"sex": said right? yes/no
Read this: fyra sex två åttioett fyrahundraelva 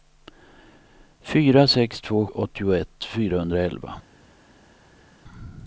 yes